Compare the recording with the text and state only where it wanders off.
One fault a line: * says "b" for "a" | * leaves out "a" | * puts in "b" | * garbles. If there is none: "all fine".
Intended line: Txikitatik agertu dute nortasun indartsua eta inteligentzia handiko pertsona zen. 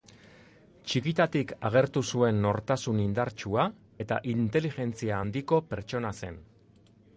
* says "zuen" for "dute"